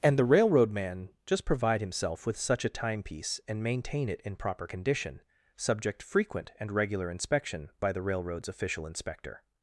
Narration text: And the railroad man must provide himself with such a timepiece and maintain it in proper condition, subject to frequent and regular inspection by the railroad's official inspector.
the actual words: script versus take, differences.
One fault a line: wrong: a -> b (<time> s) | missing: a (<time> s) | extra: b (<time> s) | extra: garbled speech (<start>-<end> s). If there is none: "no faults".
wrong: must -> just (1.3 s)
missing: to (6.0 s)